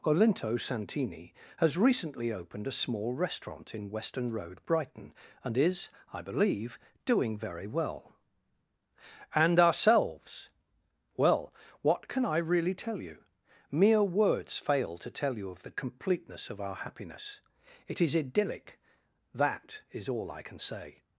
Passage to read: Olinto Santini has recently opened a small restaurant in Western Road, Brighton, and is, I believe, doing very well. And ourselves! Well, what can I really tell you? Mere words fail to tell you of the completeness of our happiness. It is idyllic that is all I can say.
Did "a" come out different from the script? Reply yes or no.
no